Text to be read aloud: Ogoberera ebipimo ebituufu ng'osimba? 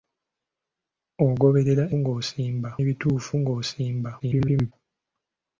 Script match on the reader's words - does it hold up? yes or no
no